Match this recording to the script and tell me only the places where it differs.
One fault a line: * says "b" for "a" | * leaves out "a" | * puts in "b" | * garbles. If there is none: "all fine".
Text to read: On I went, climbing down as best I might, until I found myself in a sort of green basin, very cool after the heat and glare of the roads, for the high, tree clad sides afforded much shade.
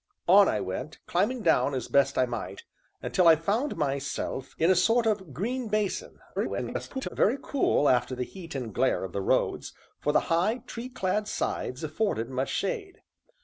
* garbles